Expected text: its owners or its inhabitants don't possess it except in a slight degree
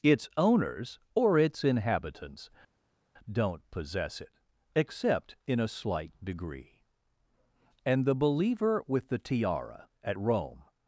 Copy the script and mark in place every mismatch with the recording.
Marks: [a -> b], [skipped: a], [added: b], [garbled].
its owners or its inhabitants don't possess it except in a slight degree [added: and the believer with the tiara at rome]